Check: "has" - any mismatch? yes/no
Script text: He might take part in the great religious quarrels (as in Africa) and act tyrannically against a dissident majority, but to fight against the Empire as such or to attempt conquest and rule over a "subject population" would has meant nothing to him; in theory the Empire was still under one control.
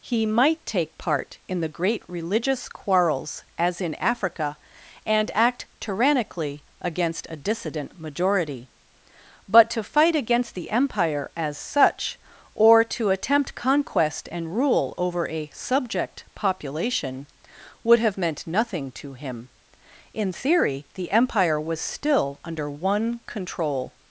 yes